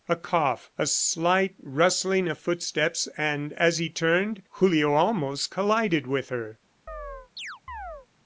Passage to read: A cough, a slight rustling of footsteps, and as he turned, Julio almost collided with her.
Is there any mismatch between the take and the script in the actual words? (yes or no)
no